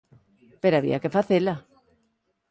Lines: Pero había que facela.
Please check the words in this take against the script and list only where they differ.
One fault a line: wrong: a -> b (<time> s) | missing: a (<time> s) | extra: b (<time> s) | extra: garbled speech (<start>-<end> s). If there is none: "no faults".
no faults